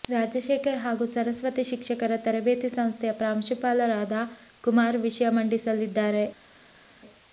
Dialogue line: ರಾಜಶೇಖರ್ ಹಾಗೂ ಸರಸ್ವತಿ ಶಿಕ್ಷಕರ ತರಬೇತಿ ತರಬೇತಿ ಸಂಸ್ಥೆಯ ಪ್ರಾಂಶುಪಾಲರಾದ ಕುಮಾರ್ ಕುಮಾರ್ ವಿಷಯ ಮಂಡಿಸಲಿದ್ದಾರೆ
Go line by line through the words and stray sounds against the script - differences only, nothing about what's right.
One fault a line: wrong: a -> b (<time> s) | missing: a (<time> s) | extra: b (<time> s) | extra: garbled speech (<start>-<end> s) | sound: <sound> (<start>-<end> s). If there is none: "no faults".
missing: ತರಬೇತಿ (2.7 s)
missing: ಕುಮಾರ್ (5.0 s)